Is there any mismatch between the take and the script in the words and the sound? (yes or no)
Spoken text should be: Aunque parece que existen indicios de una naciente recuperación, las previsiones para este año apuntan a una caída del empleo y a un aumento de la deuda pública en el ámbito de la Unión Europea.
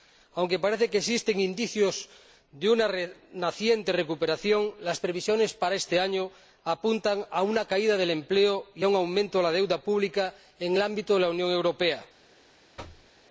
yes